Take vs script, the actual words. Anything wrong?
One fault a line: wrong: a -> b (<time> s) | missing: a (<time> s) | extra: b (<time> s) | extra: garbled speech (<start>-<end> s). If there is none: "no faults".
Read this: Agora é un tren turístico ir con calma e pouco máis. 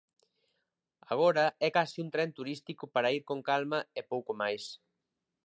extra: case (1.8 s)
extra: para (2.9 s)